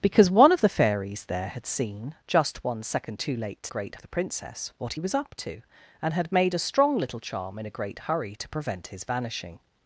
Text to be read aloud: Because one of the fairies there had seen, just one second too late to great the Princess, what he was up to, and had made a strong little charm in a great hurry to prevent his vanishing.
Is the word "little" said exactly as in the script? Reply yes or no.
yes